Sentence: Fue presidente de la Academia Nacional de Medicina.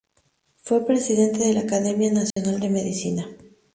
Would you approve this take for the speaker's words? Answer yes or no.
yes